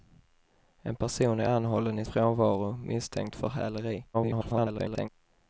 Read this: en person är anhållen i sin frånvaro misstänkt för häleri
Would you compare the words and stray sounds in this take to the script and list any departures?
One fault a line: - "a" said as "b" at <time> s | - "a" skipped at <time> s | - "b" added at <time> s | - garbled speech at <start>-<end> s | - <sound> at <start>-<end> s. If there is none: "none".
- "sin" skipped at 2.1 s
- garbled speech at 4.1-5.1 s